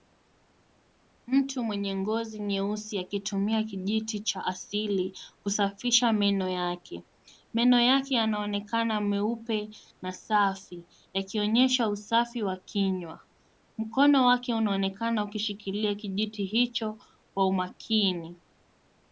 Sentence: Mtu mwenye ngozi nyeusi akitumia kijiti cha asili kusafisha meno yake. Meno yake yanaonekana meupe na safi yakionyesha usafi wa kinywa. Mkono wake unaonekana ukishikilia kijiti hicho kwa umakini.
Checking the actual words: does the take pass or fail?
pass